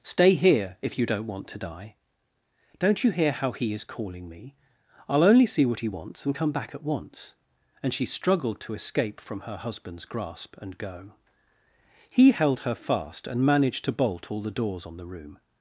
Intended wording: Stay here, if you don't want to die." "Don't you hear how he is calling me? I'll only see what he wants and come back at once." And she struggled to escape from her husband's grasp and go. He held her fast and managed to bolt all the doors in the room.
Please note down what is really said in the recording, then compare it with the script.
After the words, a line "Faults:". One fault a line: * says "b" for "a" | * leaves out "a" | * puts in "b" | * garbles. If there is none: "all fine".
Stay here, if you don't want to die." "Don't you hear how he is calling me? I'll only see what he wants and come back at once." And she struggled to escape from her husband's grasp and go. He held her fast and managed to bolt all the doors on the room.
Faults:
* says "on" for "in"